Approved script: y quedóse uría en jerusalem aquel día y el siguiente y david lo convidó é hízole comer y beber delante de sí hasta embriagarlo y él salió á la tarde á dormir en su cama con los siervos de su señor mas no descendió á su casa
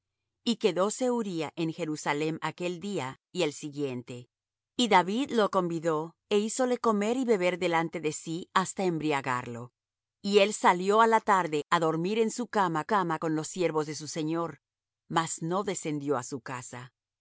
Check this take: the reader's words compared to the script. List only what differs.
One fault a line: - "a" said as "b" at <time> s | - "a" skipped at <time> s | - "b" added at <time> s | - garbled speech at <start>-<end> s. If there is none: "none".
- "cama" added at 12.8 s